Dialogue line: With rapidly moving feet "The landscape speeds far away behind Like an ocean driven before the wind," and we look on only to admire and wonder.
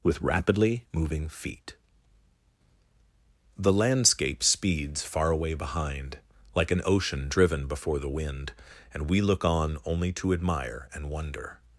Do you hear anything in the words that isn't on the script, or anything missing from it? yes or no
no